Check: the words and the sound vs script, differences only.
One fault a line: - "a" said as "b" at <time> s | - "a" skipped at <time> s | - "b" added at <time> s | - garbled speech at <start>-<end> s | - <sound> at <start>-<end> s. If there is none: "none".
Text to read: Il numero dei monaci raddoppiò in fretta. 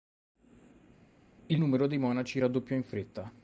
none